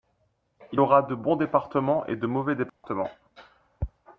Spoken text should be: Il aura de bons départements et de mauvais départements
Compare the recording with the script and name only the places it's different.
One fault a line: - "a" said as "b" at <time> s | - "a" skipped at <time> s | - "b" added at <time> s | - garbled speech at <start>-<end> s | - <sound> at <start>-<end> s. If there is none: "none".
- dropout at 2.7-2.8 s